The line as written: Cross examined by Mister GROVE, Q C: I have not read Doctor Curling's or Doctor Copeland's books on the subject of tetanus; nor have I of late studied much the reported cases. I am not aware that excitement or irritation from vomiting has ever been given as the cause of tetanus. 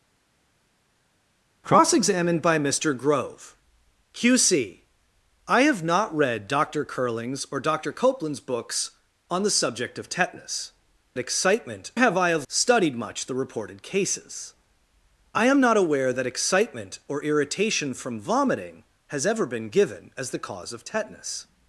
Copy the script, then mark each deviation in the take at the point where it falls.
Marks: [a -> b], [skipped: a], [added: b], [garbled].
Cross examined by Mister GROVE, Q C: I have not read Doctor Curling's or Doctor Copeland's books on the subject of tetanus; [nor -> excitement] have I of [skipped: late] studied much the reported cases. I am not aware that excitement or irritation from vomiting has ever been given as the cause of tetanus.